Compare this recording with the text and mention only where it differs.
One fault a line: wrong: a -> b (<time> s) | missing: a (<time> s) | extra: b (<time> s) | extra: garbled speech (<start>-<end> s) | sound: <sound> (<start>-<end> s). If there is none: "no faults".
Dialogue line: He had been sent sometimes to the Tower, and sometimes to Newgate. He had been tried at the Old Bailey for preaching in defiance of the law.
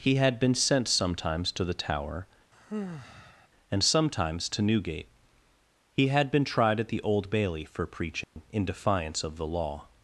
sound: sigh (2.5-3.5 s)
sound: dropout (8.2-8.4 s)